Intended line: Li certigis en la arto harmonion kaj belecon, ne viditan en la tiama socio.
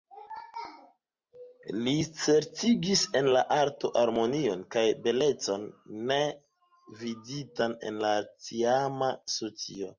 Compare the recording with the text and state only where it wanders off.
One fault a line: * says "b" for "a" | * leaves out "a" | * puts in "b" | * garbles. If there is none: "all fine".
all fine